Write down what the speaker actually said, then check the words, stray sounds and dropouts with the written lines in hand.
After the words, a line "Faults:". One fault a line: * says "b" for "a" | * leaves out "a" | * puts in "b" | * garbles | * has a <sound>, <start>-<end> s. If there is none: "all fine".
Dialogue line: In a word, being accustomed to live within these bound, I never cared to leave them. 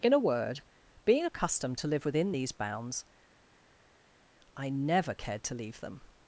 In a word, being accustomed to live within these bounds, I never cared to leave them.
Faults:
* says "bounds" for "bound"